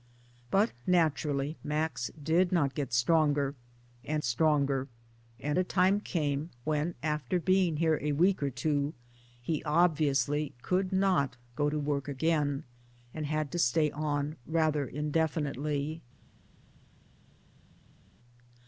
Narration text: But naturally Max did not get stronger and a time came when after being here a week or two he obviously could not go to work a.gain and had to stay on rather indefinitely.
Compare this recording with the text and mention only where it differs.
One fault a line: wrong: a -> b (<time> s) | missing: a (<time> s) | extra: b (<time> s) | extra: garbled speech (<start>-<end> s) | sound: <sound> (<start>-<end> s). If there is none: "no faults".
extra: stronger and (4.2 s)